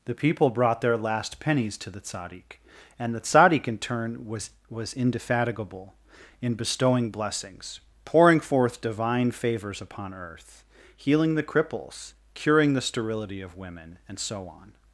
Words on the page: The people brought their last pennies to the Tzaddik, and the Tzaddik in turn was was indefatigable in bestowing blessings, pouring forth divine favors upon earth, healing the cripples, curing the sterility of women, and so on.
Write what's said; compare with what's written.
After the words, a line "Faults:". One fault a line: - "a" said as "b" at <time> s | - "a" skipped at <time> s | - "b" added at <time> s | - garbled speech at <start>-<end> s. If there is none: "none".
The people brought their last pennies to the Tzaddik, and the Tzaddik in turn was was indefatigable in bestowing blessings, pouring forth divine favors upon earth, healing the cripples, curing the sterility of women, and so on.
Faults:
none